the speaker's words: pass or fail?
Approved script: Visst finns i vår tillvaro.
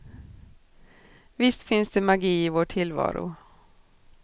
fail